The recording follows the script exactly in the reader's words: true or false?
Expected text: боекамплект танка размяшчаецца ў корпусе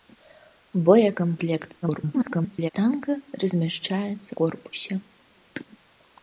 false